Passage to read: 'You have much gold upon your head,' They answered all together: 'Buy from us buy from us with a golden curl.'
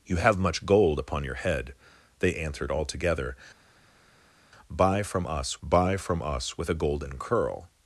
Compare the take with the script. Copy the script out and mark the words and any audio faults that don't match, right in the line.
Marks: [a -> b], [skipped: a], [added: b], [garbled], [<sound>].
'You have much gold upon your head,' They answered all together: 'Buy from us buy from us with a golden curl.'